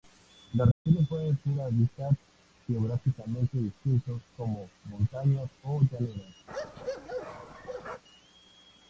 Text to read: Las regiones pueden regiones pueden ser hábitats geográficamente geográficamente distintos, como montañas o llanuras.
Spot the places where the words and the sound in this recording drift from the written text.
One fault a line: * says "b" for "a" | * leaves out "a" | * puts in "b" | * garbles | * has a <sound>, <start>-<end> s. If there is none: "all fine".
* has a dropout, 0.7-0.9 s
* leaves out "regiones pueden"
* leaves out "geográficamente"
* has a bark, 6.5-8.0 s